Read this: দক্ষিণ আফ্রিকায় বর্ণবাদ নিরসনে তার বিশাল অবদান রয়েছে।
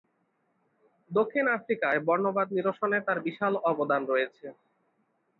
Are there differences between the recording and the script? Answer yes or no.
no